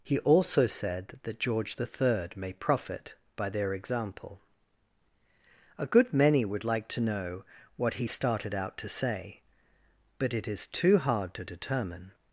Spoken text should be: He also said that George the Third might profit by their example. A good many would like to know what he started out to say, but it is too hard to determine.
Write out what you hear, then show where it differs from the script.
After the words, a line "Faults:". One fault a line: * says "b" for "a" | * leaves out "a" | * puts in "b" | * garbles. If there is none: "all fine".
He also said that George the Third may profit by their example. A good many would like to know what he started out to say, but it is too hard to determine.
Faults:
* says "may" for "might"